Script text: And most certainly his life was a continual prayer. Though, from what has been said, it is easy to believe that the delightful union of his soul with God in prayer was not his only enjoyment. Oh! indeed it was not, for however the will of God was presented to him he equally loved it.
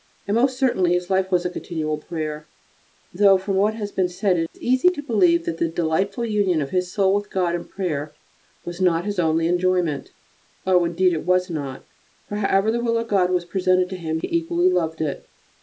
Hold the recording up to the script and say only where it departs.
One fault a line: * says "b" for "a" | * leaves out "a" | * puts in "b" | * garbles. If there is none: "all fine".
all fine